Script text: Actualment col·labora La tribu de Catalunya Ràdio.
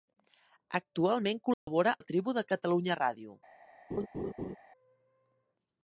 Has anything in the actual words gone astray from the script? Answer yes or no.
no